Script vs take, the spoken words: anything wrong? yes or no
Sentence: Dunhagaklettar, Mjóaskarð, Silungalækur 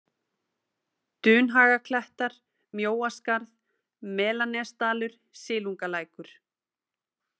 yes